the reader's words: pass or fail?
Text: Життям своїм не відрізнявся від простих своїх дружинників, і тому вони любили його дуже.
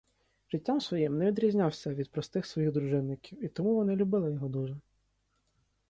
pass